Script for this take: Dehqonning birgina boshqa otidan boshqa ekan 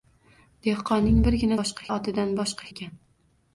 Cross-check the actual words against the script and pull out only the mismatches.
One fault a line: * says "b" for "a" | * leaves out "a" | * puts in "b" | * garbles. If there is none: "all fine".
all fine